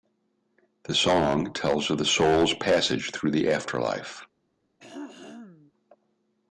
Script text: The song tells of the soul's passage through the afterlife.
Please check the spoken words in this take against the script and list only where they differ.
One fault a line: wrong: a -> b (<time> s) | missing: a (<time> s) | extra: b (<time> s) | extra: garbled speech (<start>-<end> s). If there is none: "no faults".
no faults